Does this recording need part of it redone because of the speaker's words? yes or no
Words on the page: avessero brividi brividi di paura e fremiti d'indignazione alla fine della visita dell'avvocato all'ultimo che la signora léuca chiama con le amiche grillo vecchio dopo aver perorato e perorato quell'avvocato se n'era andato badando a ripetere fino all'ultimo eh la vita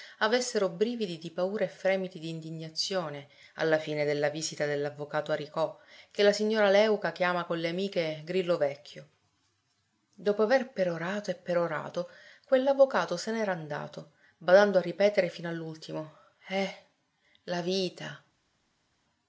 yes